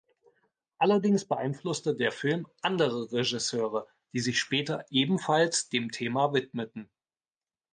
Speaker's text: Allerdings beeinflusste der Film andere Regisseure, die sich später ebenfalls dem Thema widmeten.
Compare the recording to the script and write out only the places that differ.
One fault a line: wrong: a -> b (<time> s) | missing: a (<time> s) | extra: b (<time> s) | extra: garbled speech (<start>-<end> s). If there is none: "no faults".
no faults